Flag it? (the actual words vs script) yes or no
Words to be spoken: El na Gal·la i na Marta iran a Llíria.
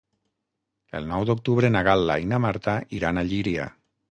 yes